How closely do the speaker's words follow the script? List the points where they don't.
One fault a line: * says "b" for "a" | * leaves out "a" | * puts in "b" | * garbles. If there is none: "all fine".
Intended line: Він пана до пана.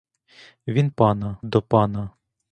all fine